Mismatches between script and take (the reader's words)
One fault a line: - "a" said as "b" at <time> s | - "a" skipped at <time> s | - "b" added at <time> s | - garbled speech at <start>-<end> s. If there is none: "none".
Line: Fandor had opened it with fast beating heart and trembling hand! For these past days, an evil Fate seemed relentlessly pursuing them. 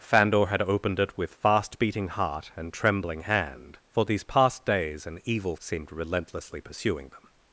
- "Fate" skipped at 5.5 s